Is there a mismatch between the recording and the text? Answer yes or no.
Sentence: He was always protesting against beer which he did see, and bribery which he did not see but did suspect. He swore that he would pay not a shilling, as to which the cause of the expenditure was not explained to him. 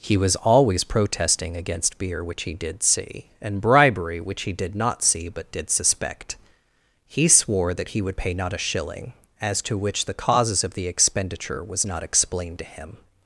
yes